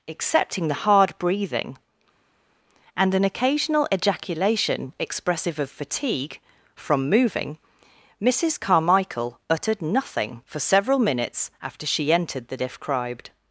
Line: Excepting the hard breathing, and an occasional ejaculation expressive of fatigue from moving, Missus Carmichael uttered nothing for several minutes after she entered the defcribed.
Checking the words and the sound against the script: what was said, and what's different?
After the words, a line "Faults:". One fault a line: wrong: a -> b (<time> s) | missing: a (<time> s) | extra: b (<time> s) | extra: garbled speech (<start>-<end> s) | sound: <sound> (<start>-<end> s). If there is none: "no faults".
Excepting the hard breathing, and an occasional ejaculation expressive of fatigue from moving, Missus Carmichael uttered nothing for several minutes after she entered the defcribed.
Faults:
no faults